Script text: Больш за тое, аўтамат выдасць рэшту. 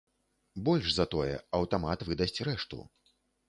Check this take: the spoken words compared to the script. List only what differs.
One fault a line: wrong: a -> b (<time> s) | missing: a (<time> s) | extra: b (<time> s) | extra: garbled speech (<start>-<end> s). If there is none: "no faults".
no faults